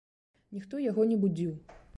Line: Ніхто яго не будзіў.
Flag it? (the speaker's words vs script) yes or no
no